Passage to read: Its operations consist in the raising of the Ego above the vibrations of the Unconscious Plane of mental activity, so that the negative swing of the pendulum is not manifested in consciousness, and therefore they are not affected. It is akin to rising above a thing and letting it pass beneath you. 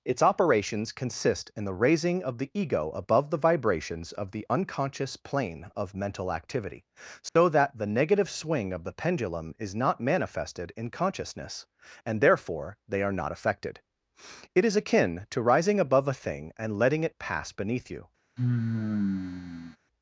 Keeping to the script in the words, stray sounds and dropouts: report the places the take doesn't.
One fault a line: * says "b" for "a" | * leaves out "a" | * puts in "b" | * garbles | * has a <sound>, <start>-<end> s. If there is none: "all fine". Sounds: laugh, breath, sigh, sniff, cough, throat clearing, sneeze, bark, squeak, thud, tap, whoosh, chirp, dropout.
* has a dropout, 7.3-7.4 s
* has a sigh, 18.4-19.8 s